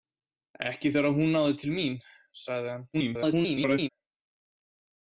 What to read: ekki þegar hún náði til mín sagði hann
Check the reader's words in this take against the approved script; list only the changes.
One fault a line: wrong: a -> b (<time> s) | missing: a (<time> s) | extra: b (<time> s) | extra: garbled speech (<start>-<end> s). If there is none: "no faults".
extra: garbled speech (2.9-3.9 s)